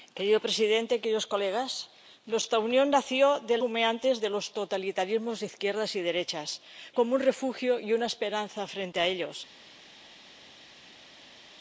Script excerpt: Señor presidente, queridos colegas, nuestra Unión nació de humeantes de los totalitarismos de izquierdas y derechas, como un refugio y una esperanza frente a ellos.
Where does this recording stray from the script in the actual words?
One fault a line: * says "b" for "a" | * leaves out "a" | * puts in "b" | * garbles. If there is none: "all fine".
all fine